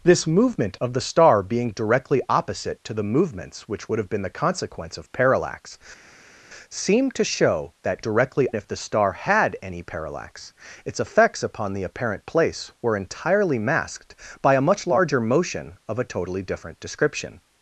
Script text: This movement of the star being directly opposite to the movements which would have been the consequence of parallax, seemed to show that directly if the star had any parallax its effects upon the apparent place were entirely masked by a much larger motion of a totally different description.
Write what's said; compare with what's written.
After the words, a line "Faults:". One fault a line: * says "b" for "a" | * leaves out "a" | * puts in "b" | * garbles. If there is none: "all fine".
This movement of the star being directly opposite to the movements which would have been the consequence of parallax, seemed to show that directly if the star had any parallax its effects upon the apparent place were entirely masked by a much larger motion of a totally different description.
Faults:
all fine